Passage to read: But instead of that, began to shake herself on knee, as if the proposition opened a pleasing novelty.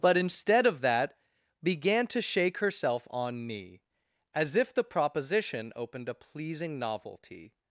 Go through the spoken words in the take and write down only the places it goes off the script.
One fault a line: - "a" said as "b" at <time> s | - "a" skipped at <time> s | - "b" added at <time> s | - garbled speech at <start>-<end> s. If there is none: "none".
none